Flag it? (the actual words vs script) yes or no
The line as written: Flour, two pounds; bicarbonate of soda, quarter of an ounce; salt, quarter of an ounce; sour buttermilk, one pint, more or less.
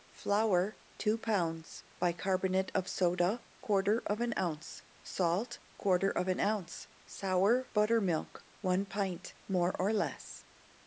no